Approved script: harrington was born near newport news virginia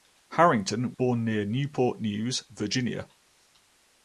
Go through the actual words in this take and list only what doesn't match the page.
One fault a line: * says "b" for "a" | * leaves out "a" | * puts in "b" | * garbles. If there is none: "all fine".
* leaves out "was"